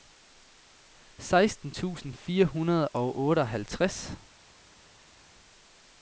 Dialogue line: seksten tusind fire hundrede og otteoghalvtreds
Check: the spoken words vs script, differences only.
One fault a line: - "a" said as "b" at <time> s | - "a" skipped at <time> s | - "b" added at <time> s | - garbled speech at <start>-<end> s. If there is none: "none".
none